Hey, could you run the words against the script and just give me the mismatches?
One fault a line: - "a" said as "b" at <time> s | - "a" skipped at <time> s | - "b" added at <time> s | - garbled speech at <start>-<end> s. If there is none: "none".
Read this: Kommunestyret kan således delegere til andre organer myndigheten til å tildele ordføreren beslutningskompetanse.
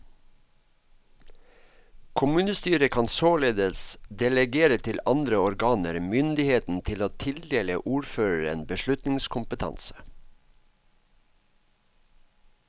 none